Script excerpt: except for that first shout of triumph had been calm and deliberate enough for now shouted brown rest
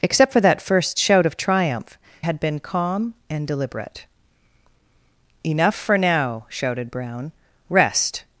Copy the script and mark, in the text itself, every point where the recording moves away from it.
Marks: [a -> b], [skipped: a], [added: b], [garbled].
except for that first shout of triumph had been calm and deliberate enough for now shouted brown rest